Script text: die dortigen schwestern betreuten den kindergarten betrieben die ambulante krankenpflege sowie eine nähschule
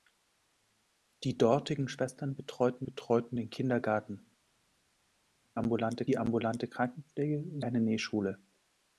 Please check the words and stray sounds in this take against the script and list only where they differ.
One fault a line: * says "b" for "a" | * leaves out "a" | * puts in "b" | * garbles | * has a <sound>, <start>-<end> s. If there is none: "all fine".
* puts in "betreuten"
* says "ambulante" for "betrieben"
* leaves out "sowie"